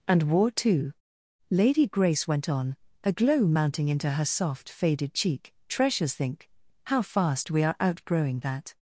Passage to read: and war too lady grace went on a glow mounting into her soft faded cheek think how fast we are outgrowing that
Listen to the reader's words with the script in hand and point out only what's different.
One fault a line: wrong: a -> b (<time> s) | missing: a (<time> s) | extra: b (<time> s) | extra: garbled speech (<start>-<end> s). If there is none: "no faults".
extra: treasures (5.7 s)